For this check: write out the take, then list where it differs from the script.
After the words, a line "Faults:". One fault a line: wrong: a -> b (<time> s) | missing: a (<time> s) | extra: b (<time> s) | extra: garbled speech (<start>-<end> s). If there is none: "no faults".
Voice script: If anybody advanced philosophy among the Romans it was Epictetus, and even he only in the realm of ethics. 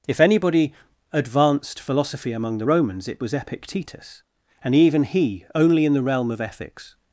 If anybody advanced philosophy among the Romans it was Epictetus, and even he only in the realm of ethics.
Faults:
no faults